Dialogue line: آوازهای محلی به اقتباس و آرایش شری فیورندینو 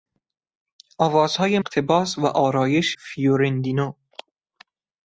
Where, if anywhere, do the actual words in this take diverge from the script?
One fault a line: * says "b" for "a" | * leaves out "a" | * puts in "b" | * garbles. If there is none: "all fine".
* leaves out "محلی به"
* leaves out "شری"